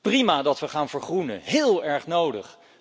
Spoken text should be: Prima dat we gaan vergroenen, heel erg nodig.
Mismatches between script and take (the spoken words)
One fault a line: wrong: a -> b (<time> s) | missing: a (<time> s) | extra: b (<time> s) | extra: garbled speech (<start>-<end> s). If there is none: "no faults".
no faults